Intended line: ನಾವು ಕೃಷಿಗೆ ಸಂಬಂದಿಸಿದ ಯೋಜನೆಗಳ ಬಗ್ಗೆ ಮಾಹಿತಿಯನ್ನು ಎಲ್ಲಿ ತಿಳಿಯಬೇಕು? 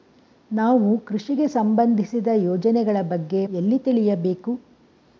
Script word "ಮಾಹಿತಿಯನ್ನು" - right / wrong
wrong